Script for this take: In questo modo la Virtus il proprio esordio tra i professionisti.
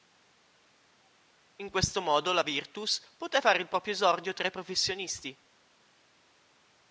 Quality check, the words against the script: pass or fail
fail